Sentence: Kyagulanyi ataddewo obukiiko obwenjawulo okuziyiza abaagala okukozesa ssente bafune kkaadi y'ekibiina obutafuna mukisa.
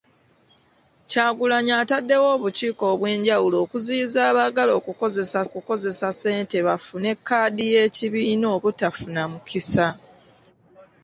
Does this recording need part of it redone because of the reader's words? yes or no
yes